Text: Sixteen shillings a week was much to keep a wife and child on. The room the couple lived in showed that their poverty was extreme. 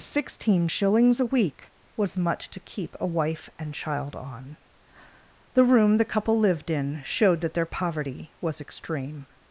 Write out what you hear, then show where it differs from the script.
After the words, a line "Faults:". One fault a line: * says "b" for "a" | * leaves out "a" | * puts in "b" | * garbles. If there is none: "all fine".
Sixteen shillings a week was much to keep a wife and child on. The room the couple lived in showed that their poverty was extreme.
Faults:
all fine